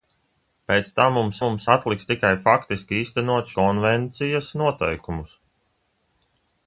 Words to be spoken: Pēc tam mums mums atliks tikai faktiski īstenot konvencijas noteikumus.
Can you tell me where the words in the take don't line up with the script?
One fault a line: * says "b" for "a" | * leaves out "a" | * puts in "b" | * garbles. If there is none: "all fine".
all fine